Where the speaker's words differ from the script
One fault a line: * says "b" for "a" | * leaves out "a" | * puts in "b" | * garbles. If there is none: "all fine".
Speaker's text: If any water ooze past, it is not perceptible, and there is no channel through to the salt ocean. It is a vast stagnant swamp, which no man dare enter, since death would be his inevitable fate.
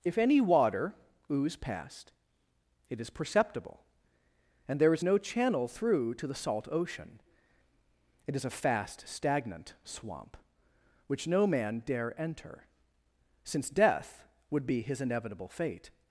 * leaves out "not"
* says "fast" for "vast"